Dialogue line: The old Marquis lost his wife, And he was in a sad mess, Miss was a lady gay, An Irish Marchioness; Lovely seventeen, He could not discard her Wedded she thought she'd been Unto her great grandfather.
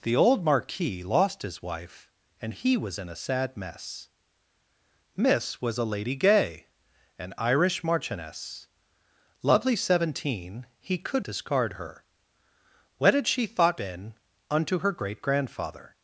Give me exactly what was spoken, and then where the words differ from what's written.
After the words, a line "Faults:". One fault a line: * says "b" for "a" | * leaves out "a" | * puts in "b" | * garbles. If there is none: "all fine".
The old Marquis lost his wife, And he was in a sad mess, Miss was a lady gay, An Irish Marchioness; Lovely seventeen, He could discard her Wedded she thought been Unto her great grandfather.
Faults:
* leaves out "not"
* leaves out "she'd"